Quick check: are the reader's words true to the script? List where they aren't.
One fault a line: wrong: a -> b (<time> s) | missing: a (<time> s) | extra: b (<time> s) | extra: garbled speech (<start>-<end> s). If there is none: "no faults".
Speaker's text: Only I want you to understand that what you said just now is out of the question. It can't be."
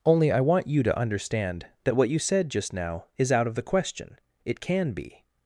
wrong: can't -> can (4.6 s)